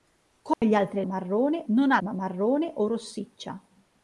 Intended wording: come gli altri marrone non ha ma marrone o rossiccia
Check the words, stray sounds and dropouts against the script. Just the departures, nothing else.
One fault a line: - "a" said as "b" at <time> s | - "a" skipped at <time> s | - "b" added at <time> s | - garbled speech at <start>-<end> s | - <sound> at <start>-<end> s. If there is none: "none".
- dropout at 0.5-0.6 s